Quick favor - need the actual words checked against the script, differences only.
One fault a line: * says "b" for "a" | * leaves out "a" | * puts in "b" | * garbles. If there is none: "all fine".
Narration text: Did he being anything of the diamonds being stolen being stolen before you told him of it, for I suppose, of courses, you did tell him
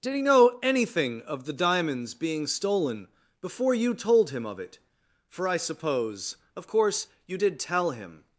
* says "know" for "being"
* leaves out "being stolen"
* says "course" for "courses"